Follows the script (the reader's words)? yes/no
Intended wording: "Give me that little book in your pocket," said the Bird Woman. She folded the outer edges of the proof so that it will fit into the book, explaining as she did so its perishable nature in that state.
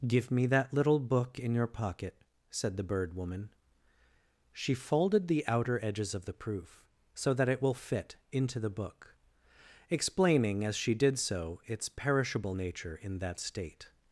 yes